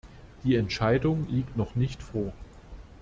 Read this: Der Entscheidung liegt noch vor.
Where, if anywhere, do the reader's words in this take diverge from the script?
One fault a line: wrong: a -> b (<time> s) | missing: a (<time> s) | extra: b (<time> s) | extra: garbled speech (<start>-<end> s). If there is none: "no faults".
wrong: Der -> Die (0.4 s)
extra: nicht (1.7 s)